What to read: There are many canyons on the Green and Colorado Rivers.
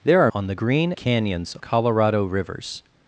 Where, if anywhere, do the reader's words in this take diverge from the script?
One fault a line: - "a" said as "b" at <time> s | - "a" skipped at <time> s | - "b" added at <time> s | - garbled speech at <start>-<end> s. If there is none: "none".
- "many canyons" skipped at 0.3 s
- "and" said as "canyons" at 0.9 s